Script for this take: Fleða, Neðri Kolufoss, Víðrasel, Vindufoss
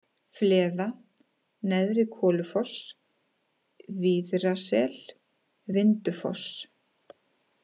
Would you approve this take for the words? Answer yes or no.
yes